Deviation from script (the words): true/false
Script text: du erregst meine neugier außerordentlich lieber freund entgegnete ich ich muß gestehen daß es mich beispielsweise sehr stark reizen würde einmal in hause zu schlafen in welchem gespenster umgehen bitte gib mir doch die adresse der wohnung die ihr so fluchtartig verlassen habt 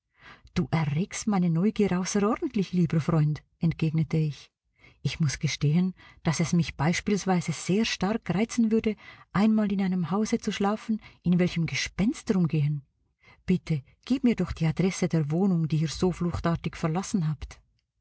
true